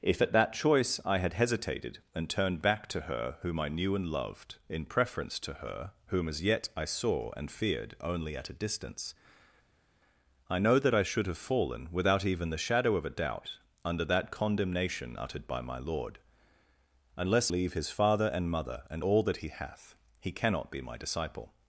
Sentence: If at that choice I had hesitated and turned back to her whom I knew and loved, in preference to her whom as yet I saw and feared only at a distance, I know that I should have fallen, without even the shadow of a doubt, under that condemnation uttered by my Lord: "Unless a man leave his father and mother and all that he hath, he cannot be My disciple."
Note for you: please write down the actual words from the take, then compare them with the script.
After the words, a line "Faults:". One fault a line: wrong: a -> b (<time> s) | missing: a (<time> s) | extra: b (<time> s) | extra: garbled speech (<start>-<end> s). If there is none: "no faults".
If at that choice I had hesitated and turned back to her whom I knew and loved, in preference to her whom as yet I saw and feared only at a distance, I know that I should have fallen, without even the shadow of a doubt, under that condemnation uttered by my Lord: "Unless leave his father and mother and all that he hath, he cannot be My disciple."
Faults:
missing: a man (17.5 s)